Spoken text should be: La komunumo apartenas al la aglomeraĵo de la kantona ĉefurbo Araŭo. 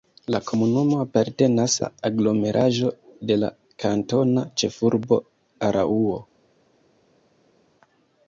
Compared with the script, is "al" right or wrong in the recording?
wrong